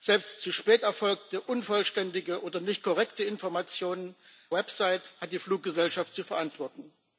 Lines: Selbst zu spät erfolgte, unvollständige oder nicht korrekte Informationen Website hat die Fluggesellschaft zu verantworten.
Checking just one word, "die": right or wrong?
right